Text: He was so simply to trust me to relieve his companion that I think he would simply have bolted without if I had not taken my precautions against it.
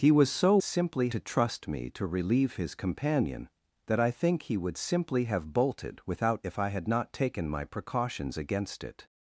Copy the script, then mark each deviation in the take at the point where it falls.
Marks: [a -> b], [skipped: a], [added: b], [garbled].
He was so simply to trust me to relieve his companion that I think he would simply have bolted without if I had not taken my precautions against it.